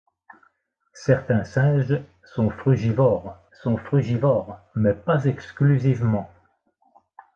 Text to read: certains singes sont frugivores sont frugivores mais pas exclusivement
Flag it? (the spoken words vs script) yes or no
no